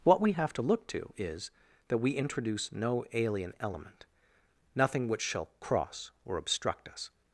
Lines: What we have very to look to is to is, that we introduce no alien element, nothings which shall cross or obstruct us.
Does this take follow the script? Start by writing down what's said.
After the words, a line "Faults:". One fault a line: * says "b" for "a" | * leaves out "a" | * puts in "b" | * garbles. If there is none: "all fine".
What we have to look to is, that we introduce no alien element, nothing which shall cross or obstruct us.
Faults:
* leaves out "very"
* leaves out "to is"
* says "nothing" for "nothings"